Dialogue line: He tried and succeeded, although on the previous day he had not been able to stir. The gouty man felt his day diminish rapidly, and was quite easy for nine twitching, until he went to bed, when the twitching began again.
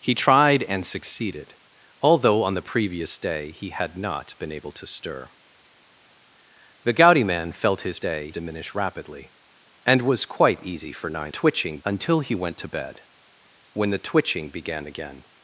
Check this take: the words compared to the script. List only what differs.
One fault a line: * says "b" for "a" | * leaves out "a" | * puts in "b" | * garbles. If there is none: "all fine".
all fine